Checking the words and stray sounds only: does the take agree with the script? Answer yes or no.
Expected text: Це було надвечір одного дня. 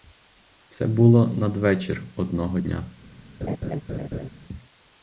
no